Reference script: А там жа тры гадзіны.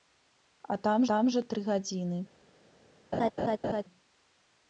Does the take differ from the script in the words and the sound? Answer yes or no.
yes